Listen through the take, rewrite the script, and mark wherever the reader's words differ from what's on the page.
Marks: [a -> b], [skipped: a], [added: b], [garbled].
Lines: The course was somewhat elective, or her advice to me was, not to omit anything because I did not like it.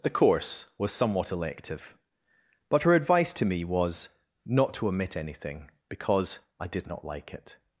The course was somewhat elective, [or -> but] her advice to me was, not to omit anything because I did not like it.